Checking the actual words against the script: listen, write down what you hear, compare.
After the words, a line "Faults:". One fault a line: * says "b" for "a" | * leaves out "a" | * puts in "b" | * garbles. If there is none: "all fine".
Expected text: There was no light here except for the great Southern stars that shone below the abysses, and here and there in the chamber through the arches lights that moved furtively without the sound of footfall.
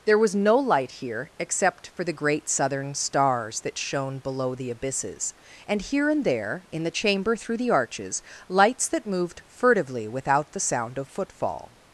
There was no light here except for the great Southern stars that shone below the abysses, and here and there in the chamber through the arches lights that moved furtively without the sound of footfall.
Faults:
all fine